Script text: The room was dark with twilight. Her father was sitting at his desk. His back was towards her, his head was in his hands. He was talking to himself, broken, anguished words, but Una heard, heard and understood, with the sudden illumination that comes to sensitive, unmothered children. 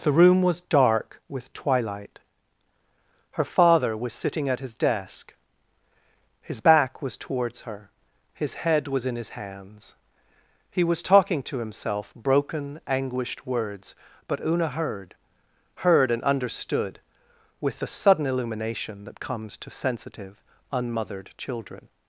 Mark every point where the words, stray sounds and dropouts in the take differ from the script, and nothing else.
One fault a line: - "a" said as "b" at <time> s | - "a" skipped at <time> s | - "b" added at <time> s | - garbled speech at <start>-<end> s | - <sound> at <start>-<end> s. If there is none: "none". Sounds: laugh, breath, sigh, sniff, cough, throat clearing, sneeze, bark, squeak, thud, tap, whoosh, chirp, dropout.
none